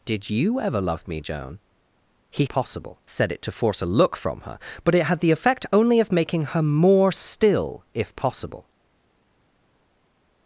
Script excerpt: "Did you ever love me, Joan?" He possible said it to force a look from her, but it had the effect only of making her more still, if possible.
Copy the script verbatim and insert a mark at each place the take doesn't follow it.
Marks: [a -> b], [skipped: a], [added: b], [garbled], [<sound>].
"Did you ever love me, Joan?" He possible said it to force a look from her, but it had the effect only of making her more still, if possible.